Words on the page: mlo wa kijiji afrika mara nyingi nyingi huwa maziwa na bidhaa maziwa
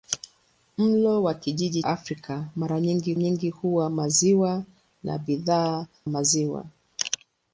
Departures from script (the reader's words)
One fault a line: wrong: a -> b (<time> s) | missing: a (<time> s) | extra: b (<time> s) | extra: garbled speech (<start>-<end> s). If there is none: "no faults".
no faults